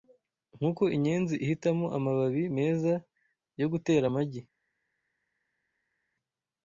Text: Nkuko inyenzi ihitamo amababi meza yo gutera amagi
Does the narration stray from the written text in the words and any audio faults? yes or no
no